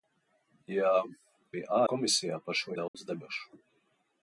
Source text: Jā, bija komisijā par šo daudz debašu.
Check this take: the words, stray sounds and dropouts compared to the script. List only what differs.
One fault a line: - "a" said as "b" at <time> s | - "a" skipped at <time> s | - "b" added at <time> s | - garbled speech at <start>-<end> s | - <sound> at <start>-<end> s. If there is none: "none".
- dropout at 2.9-2.9 s